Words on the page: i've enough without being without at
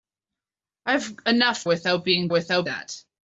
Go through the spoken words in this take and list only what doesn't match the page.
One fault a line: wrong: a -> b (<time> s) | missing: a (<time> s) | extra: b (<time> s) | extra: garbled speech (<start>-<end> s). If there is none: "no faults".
no faults